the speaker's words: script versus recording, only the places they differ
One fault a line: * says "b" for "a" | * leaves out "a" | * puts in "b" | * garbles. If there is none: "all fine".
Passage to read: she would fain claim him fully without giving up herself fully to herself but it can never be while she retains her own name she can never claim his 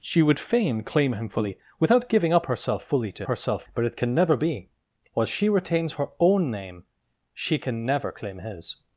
all fine